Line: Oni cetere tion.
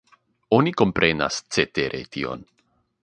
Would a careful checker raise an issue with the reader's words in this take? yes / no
yes